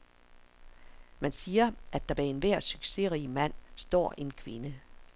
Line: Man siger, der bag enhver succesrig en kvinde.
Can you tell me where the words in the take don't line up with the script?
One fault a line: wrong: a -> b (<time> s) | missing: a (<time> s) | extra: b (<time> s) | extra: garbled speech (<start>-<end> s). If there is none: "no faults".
extra: at (1.9 s)
extra: mand står (3.3 s)